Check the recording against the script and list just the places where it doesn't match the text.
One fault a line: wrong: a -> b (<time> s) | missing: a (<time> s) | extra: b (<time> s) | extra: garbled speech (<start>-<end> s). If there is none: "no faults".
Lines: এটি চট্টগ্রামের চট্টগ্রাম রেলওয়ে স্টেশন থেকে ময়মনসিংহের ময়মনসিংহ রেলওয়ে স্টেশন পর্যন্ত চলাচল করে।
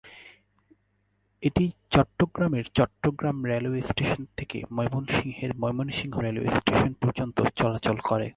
no faults